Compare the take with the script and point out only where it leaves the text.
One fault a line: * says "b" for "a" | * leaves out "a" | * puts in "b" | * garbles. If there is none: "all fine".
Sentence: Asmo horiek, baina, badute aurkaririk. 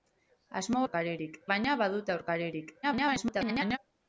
* says "aurkaririk" for "horiek"
* garbles